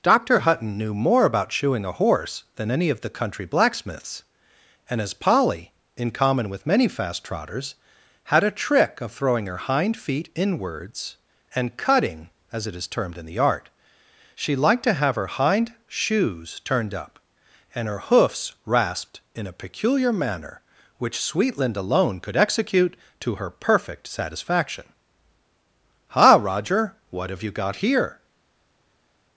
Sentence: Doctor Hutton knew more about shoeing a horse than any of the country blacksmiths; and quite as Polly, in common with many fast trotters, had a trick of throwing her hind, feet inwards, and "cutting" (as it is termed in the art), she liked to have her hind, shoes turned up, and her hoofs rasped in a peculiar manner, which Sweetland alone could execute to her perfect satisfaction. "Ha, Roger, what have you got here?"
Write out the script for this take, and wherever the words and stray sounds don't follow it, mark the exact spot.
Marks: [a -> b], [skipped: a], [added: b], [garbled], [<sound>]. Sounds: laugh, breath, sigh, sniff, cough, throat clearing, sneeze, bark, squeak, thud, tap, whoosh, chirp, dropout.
Doctor Hutton knew more about shoeing a horse than any of the country blacksmiths; and [skipped: quite] as Polly, in common with many fast trotters, had a trick of throwing her hind, feet inwards, and "cutting" (as it is termed in the art), she liked to have her hind, shoes turned up, and her hoofs rasped in a peculiar manner, which Sweetland alone could execute to her perfect satisfaction. "Ha, Roger, what have you got here?"